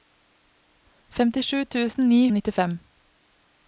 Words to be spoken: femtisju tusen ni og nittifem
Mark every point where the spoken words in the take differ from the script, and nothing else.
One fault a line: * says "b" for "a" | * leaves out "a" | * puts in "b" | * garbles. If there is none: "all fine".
all fine